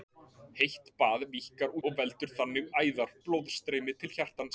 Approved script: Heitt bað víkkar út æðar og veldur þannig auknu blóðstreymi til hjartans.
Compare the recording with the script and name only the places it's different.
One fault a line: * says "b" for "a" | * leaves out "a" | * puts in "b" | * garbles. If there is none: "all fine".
* leaves out "út æðar"
* says "æðar" for "auknu"